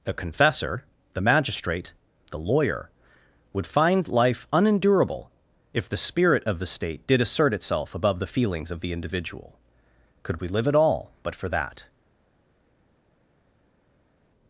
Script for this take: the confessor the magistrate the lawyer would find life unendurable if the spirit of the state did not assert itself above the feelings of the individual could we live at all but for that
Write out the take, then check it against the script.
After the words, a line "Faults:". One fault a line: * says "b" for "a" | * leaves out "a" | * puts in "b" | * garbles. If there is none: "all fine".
the confessor the magistrate the lawyer would find life unendurable if the spirit of the state did assert itself above the feelings of the individual could we live at all but for that
Faults:
* leaves out "not"